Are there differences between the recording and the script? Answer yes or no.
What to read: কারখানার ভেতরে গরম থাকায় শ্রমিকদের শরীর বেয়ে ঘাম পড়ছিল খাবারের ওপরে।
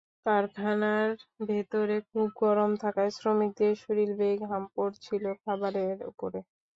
yes